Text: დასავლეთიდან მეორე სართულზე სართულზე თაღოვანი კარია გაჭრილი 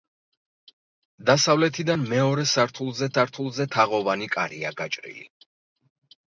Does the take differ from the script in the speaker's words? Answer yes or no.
no